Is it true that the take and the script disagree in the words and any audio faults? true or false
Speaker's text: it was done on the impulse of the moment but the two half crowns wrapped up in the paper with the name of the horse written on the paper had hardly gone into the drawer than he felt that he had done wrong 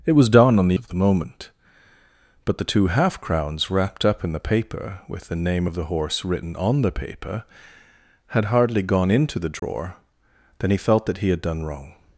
true